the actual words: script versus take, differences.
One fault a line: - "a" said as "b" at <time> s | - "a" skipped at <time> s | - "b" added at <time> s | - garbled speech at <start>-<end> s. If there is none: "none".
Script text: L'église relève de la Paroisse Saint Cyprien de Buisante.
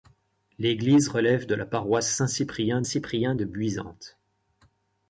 - "Cyprien" added at 2.8 s